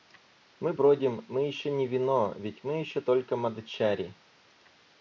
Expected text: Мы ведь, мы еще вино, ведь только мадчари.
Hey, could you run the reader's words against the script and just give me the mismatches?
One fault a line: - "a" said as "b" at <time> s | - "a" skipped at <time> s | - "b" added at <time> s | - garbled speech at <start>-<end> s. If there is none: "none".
- "ведь" said as "бродим" at 0.7 s
- "не" added at 1.7 s
- "мы еще" added at 2.6 s